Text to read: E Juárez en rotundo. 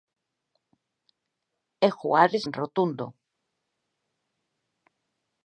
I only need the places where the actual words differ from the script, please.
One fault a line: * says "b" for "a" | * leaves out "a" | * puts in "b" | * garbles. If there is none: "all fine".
all fine